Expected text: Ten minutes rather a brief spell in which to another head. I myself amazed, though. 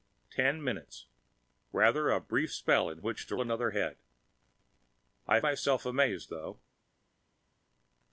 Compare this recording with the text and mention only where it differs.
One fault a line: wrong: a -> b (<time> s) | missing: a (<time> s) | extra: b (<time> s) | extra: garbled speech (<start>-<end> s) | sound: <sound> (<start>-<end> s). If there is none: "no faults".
no faults